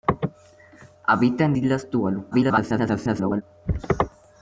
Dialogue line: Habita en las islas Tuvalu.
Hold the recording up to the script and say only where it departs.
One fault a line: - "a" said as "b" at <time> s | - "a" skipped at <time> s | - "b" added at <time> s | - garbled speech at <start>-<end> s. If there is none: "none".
- "las" skipped at 1.5 s
- garbled speech at 2.3-3.4 s